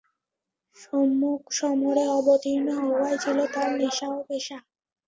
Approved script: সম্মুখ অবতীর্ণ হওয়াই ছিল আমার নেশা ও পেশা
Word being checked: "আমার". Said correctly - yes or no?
no